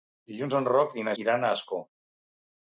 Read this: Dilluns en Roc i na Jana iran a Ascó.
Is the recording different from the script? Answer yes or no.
yes